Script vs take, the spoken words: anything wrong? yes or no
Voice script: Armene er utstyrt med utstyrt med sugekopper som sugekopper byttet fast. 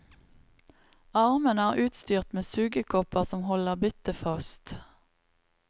yes